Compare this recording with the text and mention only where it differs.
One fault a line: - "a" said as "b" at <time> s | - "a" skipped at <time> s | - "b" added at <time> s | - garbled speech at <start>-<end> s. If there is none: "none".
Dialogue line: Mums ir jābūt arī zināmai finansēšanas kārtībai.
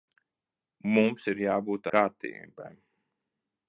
- "arī zināmai finansēšanas" skipped at 1.9 s